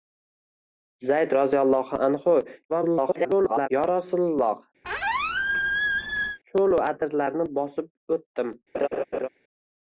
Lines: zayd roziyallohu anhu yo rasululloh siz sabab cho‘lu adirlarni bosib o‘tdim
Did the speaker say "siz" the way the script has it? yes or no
no